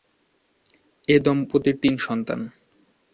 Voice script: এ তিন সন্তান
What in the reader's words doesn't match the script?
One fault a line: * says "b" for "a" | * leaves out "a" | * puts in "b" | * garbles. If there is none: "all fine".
* puts in "দম্পতির"